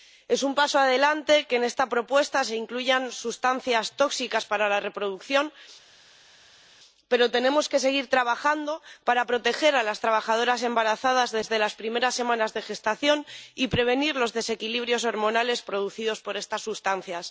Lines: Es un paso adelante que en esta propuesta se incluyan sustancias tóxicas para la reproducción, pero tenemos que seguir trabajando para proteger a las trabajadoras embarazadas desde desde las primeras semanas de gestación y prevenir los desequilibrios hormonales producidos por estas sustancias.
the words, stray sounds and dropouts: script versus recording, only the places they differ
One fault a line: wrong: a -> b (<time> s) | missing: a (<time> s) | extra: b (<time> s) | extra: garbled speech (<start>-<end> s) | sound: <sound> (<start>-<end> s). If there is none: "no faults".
missing: desde (11.6 s)